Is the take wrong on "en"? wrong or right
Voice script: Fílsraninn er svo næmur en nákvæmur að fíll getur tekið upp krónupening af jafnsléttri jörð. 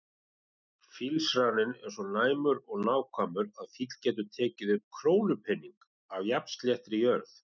wrong